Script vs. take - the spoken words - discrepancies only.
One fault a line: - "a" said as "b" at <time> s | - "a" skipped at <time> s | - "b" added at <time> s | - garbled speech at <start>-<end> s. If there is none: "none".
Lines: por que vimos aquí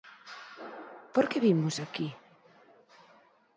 none